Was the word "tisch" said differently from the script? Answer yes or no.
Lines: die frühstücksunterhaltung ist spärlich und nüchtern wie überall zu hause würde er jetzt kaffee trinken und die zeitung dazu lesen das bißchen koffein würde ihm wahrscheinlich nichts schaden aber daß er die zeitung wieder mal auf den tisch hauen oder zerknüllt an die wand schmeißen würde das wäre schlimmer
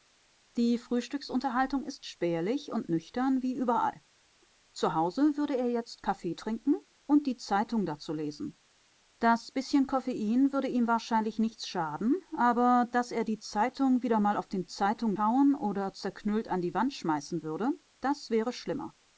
yes